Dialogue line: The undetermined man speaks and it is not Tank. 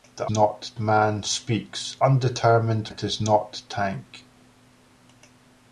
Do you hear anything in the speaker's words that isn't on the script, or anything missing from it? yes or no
yes